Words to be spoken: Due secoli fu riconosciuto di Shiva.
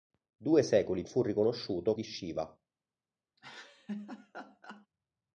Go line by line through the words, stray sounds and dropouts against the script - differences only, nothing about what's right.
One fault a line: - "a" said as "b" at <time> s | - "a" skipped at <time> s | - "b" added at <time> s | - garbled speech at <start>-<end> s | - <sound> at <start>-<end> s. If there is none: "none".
- laugh at 3.4-4.9 s